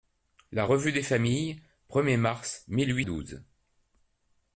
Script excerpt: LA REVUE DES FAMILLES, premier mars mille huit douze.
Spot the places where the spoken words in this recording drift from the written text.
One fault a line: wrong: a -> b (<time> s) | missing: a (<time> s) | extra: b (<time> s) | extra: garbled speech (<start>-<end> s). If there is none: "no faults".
no faults